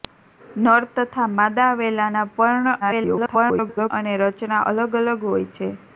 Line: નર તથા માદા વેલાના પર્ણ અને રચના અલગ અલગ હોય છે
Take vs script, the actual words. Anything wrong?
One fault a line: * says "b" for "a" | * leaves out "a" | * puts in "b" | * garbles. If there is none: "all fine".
* garbles